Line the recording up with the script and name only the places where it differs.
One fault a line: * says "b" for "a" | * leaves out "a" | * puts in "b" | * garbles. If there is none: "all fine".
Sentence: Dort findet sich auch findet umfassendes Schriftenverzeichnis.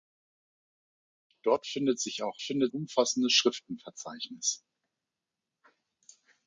all fine